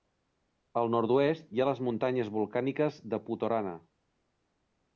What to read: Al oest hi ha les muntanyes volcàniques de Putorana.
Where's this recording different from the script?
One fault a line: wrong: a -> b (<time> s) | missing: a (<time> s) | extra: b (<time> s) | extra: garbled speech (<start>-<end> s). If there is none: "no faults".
extra: nord (0.9 s)